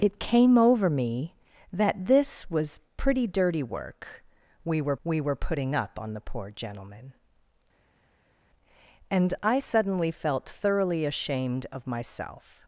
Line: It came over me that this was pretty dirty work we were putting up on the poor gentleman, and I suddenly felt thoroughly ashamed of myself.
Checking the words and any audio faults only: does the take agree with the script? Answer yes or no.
no